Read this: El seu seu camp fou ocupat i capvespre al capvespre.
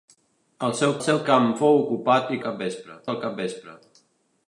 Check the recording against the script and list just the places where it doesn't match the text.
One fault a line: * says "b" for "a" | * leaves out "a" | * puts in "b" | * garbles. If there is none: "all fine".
all fine